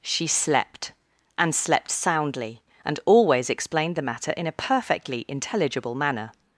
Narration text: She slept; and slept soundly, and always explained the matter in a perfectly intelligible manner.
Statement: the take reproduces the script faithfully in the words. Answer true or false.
true